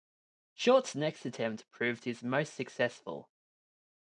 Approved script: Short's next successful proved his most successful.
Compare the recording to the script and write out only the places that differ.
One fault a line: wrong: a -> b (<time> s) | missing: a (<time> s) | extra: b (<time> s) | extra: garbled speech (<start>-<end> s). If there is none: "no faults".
wrong: successful -> attempt (1.3 s)